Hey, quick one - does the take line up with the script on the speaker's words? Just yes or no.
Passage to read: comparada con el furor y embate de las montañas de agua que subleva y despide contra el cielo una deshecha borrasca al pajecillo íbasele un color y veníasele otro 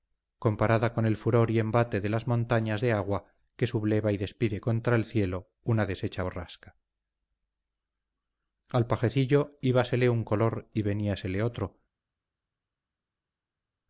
yes